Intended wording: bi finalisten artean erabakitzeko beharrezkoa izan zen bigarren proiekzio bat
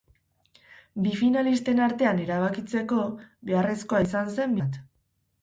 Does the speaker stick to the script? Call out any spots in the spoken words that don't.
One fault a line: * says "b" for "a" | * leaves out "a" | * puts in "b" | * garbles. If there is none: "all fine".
* leaves out "bigarren proiekzio"